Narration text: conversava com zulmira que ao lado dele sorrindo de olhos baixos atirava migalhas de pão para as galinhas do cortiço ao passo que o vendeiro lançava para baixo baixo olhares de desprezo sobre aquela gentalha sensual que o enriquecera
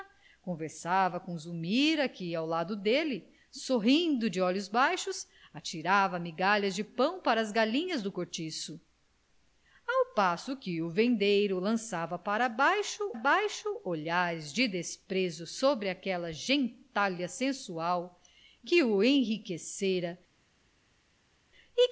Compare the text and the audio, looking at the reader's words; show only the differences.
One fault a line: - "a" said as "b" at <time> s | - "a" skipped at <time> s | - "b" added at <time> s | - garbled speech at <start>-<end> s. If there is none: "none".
none